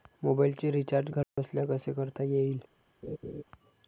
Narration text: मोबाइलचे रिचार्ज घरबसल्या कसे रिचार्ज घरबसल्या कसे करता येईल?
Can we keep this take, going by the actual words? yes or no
no